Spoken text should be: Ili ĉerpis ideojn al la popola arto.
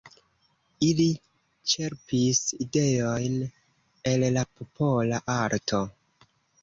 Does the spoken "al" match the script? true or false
false